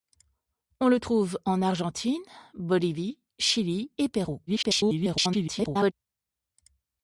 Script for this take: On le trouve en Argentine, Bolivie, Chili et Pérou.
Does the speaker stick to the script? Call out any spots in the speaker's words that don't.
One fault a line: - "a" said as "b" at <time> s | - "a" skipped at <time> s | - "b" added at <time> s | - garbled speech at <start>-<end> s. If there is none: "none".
- garbled speech at 4.5-5.9 s